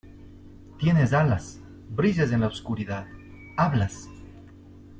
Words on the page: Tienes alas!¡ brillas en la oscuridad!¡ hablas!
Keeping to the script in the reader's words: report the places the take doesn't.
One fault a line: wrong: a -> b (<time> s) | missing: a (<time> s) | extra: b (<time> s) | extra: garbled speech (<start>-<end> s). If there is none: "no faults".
no faults